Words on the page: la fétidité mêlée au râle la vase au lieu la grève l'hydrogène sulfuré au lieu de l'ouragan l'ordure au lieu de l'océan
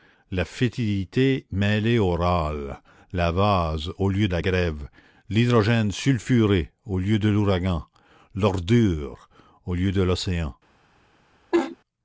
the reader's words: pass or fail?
pass